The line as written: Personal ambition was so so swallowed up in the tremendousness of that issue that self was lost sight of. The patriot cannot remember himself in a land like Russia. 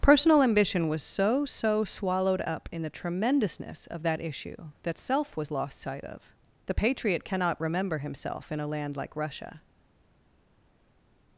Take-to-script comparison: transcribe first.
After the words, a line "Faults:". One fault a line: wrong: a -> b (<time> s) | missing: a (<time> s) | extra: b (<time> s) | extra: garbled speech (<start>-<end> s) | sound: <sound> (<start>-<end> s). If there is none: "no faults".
Personal ambition was so so swallowed up in the tremendousness of that issue that self was lost sight of. The patriot cannot remember himself in a land like Russia.
Faults:
no faults